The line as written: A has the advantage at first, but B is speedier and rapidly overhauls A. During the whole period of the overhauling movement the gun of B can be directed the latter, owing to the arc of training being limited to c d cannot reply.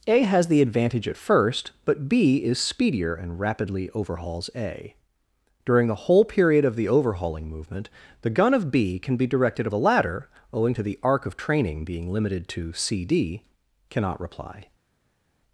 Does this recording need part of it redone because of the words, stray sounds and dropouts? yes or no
no